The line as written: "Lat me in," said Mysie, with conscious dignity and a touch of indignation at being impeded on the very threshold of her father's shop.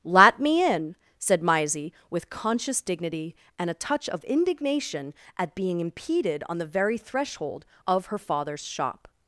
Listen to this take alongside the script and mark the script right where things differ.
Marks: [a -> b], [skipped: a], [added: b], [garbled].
"Lat me in," said Mysie, with conscious dignity and a touch of indignation at being impeded on the very threshold of her father's shop.